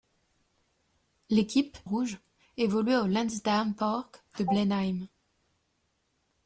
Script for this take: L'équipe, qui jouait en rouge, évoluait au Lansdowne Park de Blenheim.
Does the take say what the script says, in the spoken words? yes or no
no